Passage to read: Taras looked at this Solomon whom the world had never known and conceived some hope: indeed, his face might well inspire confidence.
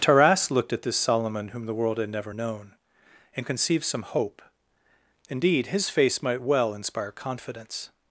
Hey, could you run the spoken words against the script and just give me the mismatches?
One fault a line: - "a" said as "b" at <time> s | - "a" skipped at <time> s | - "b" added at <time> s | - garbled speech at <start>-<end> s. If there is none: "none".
none